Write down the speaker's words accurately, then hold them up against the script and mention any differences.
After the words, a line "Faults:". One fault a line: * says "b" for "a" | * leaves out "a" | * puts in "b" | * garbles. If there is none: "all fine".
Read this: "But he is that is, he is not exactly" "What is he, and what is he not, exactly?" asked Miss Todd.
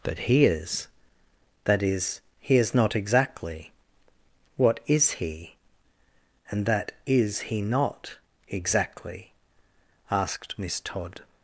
"But he is that is, he is not exactly" "What is he, and that is he not, exactly?" asked Miss Todd.
Faults:
* says "that" for "what"